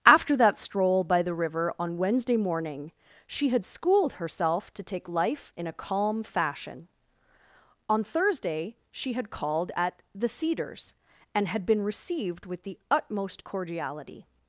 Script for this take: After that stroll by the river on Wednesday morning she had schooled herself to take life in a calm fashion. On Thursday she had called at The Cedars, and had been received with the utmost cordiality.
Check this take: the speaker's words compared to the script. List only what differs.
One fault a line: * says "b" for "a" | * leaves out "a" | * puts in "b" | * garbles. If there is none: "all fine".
all fine